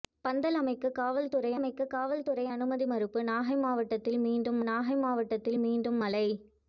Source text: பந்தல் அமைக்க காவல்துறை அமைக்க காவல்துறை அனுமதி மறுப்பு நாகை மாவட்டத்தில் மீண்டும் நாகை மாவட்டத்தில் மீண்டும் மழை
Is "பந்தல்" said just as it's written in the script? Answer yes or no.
yes